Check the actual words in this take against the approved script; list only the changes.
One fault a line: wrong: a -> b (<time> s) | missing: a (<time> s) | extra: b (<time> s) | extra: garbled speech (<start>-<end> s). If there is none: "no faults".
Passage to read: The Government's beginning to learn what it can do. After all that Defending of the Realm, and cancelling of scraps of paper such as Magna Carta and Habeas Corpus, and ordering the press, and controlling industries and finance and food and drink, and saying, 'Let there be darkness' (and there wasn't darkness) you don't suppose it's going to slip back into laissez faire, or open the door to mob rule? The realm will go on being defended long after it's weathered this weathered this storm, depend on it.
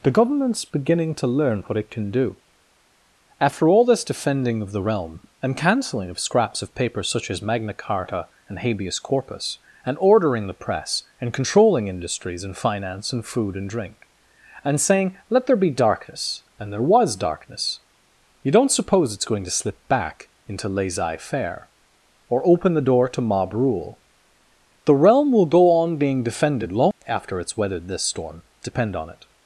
wrong: that -> this (3.9 s)
wrong: wasn't -> was (16.8 s)
missing: weathered this (28.0 s)